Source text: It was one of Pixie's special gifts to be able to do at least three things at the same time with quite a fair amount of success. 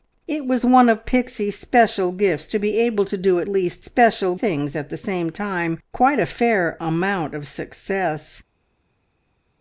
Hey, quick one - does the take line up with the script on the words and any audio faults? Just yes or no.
no